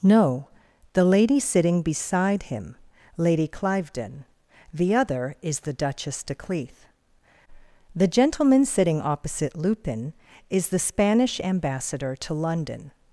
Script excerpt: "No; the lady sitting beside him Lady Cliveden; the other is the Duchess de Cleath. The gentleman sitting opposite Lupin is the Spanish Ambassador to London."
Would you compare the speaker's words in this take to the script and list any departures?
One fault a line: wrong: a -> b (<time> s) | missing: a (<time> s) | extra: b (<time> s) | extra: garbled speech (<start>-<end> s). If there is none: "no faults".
no faults